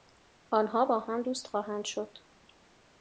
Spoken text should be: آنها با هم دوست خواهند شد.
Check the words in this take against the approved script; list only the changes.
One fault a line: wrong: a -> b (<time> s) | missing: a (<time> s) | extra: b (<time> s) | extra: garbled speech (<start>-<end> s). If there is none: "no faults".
no faults